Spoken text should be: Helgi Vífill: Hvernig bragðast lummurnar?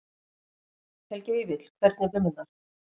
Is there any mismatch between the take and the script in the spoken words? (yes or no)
yes